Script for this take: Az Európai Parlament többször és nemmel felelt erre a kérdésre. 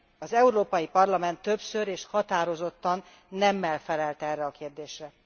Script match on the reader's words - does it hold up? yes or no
no